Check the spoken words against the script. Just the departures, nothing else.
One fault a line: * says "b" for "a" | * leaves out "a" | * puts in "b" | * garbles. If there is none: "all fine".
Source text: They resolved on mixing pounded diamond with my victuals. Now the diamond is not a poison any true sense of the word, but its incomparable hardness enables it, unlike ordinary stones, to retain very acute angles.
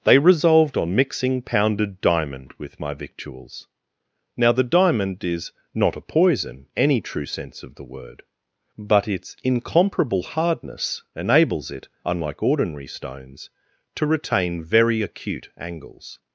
all fine